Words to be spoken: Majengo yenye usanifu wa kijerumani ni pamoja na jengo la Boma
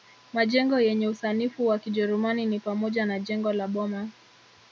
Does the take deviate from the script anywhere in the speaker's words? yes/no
no